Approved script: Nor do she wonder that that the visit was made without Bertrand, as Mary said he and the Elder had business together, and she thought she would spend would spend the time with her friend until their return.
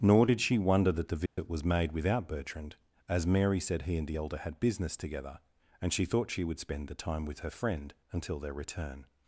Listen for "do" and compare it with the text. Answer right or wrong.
wrong